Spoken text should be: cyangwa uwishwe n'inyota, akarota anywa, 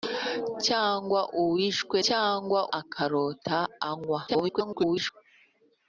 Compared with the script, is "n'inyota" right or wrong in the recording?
wrong